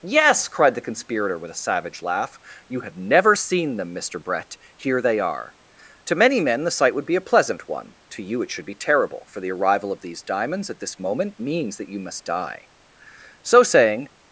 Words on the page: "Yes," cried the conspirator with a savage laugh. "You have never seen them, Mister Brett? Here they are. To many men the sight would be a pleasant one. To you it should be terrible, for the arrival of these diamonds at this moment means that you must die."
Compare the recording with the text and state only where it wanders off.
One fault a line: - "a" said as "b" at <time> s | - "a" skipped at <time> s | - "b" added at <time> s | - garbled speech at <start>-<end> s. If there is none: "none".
- "So saying" added at 13.4 s